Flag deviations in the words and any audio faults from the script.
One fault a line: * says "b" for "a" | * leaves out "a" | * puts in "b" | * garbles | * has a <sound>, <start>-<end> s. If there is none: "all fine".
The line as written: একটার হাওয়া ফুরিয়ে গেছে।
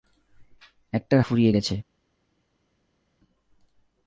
* leaves out "হাওয়া"